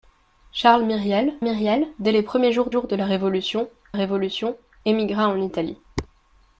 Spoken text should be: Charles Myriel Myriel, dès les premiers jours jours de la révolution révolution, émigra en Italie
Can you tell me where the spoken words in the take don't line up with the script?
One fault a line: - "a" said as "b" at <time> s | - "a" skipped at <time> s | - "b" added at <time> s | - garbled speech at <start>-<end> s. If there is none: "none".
none